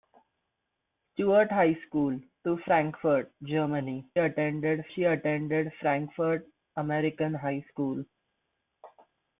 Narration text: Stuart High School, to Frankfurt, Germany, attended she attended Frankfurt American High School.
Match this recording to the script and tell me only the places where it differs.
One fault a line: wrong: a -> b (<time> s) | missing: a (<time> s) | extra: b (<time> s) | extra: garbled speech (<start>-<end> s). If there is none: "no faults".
no faults